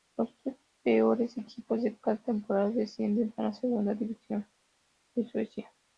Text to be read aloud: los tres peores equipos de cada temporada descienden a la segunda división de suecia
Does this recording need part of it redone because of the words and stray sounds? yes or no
no